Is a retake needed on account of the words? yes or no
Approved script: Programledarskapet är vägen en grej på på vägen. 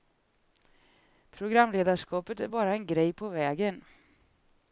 yes